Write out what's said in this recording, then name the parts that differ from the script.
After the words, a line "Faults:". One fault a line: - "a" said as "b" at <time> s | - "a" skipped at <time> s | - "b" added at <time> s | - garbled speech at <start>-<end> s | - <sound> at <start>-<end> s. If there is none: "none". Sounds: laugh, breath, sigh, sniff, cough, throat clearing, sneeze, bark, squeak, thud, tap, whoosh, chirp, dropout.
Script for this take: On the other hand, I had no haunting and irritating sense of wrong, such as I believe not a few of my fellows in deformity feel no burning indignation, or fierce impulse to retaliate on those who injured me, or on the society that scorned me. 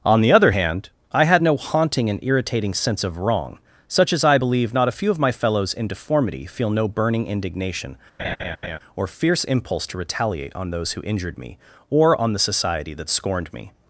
On the other hand, I had no haunting and irritating sense of wrong, such as I believe not a few of my fellows in deformity feel no burning indignation, or fierce impulse to retaliate on those who injured me, or on the society that scorned me.
Faults:
- laugh at 8.2-8.8 s